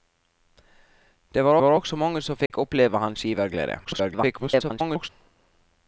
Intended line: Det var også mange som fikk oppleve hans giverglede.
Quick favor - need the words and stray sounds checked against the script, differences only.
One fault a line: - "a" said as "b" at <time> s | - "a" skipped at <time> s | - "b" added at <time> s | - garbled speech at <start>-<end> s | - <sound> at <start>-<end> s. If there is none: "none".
- "var" added at 1.6 s
- dropout at 2.5-2.5 s
- garbled speech at 3.8-5.1 s